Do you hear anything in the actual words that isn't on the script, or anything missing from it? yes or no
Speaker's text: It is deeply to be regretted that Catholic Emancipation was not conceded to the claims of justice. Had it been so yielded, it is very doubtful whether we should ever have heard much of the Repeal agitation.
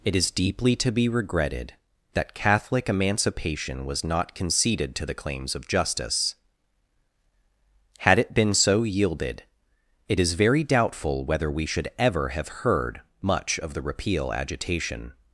no